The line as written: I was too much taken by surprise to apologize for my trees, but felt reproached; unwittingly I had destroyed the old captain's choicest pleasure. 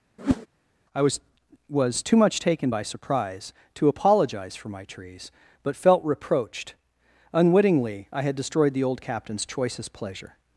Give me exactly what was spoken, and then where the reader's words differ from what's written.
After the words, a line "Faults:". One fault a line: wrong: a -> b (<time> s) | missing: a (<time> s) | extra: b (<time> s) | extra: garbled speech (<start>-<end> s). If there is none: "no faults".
I was was too much taken by surprise to apologize for my trees, but felt reproached; unwittingly I had destroyed the old captain's choicest pleasure.
Faults:
extra: was (1.7 s)